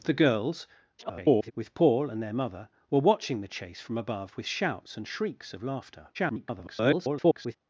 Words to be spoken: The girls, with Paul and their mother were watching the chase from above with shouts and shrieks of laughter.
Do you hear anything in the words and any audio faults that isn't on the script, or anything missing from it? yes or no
yes